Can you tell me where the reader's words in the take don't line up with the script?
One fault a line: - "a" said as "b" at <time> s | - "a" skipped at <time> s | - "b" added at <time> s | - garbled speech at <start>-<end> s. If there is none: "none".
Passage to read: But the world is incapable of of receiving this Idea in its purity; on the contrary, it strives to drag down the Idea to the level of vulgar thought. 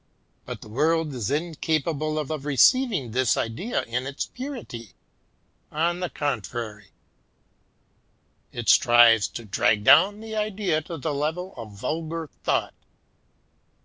none